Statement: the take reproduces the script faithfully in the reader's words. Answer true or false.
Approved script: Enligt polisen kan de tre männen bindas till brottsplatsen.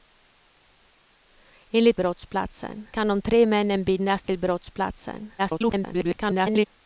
false